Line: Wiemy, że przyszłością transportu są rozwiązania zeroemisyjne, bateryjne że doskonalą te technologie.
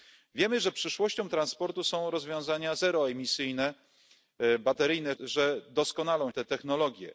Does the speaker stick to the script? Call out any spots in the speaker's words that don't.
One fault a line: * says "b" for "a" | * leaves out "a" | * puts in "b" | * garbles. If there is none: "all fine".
all fine